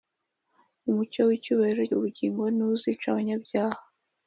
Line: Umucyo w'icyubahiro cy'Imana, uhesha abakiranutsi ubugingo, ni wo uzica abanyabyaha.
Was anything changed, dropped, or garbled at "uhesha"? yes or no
yes